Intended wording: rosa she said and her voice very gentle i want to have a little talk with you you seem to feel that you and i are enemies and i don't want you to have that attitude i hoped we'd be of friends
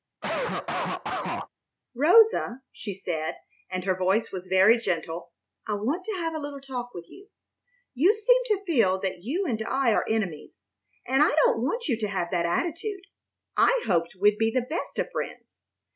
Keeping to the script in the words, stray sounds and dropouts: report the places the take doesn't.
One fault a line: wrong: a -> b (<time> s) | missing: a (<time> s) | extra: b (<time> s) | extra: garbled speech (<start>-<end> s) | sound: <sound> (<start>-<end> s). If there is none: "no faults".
sound: cough (0.2-1.5 s)
extra: was (4.3 s)
extra: the best (14.5 s)